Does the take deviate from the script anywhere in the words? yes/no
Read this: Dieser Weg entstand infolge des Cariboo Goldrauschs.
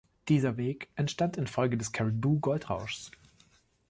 no